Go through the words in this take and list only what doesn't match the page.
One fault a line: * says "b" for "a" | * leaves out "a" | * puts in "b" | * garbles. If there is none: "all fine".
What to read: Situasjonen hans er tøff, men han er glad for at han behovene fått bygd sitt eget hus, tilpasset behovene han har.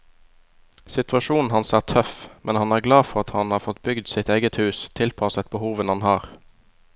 * says "har" for "behovene"